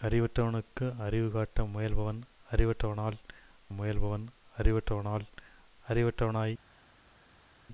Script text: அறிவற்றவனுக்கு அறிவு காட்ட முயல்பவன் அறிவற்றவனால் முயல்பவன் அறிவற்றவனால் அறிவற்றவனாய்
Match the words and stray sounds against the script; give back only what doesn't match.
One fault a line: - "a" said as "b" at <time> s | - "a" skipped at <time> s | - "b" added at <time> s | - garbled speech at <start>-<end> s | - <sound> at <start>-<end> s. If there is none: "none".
none